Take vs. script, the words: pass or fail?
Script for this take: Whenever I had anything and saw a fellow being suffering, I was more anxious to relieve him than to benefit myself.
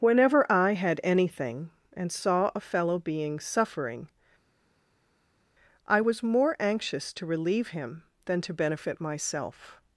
pass